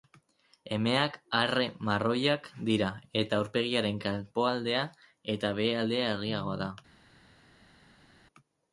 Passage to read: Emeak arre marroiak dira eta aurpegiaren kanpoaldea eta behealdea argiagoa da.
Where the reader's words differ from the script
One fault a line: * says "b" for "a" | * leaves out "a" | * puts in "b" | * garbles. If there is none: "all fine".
all fine